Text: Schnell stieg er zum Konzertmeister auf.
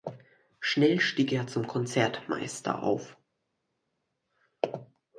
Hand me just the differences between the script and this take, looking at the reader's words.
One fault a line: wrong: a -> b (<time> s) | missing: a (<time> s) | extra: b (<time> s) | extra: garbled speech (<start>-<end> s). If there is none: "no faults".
no faults